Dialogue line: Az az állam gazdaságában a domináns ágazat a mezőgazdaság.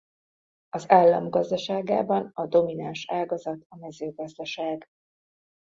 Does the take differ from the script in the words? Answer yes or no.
yes